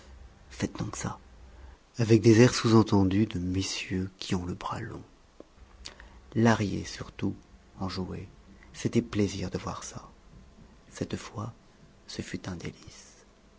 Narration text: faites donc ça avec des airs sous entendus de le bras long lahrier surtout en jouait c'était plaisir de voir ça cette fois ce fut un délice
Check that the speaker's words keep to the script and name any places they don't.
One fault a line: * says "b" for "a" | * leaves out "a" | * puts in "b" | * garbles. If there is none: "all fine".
* puts in "messieurs qui ont"